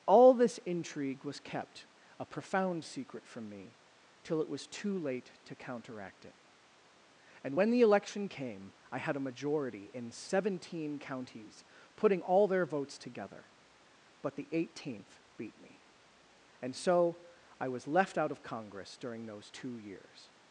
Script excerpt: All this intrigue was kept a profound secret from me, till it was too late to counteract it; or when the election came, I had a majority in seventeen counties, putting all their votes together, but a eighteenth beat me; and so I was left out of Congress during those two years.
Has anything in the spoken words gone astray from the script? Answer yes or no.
yes